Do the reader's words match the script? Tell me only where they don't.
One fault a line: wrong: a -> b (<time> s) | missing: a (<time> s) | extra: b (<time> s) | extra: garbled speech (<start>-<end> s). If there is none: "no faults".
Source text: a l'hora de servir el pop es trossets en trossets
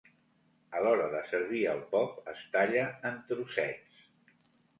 wrong: trossets -> talla (2.6 s)